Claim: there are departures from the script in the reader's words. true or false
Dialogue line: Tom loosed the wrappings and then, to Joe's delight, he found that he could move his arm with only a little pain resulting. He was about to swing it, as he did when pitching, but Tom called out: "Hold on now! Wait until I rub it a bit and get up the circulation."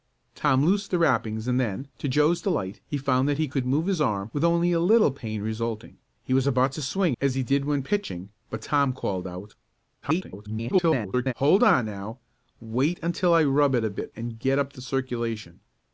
true